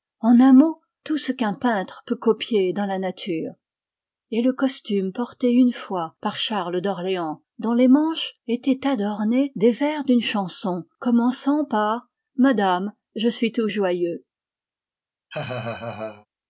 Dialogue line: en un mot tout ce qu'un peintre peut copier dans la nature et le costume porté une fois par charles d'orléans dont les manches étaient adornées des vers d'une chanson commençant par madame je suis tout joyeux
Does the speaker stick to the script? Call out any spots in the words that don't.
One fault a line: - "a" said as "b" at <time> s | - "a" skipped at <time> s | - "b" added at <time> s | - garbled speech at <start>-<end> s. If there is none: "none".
none